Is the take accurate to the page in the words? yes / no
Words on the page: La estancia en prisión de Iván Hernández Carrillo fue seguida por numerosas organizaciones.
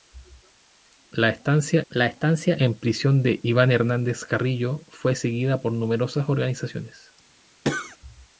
no